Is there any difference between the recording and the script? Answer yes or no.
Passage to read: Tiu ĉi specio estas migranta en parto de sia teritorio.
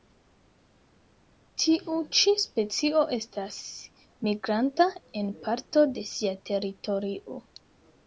no